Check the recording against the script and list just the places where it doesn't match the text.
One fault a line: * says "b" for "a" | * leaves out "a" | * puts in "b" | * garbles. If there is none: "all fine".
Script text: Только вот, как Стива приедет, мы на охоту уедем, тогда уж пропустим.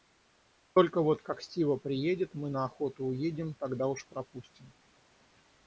all fine